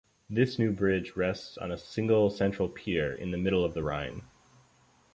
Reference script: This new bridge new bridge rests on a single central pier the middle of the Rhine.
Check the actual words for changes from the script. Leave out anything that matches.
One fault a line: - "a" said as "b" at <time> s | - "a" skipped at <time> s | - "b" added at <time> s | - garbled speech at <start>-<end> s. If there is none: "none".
- "new bridge" skipped at 1.1 s
- "in" added at 3.1 s